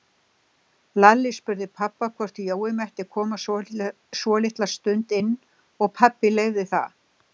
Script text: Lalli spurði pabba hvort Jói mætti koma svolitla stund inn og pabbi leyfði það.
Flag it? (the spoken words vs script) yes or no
no